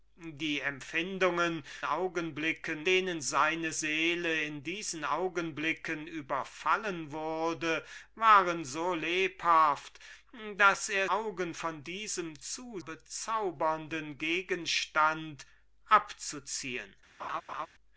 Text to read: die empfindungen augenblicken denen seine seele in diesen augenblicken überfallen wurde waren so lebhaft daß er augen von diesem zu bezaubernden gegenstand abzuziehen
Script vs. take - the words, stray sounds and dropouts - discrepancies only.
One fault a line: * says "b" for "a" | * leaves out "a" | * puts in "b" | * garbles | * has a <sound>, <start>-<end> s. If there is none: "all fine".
* has a laugh, 17.2-17.7 s